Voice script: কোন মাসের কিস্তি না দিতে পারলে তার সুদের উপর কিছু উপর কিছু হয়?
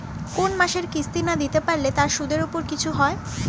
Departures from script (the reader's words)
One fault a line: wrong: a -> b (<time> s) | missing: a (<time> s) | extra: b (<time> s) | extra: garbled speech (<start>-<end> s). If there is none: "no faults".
missing: উপর কিছু (2.9 s)